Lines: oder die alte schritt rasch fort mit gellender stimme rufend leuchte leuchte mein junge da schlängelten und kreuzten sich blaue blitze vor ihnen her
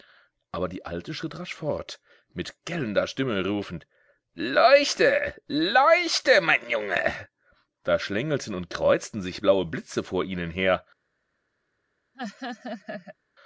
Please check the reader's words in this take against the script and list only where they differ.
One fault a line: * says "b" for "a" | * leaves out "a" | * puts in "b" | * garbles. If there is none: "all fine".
* says "aber" for "oder"